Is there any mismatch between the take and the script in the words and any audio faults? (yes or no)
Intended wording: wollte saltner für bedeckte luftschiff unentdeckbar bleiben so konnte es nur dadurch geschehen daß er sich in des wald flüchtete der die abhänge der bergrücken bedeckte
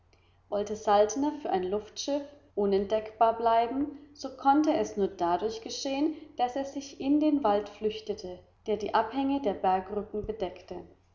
yes